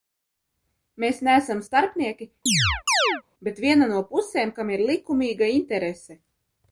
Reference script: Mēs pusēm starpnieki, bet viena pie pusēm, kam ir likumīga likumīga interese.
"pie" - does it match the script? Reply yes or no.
no